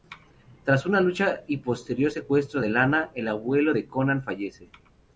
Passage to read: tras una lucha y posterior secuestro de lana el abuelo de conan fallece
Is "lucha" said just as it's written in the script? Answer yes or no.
yes